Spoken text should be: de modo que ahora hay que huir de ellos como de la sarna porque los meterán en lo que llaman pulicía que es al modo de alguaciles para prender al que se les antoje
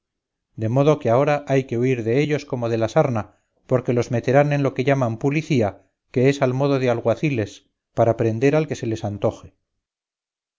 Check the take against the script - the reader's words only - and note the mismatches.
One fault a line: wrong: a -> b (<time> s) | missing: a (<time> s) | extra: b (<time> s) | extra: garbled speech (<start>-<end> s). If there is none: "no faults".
no faults